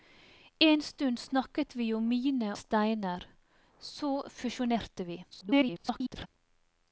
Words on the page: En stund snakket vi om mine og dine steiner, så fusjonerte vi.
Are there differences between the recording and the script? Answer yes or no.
yes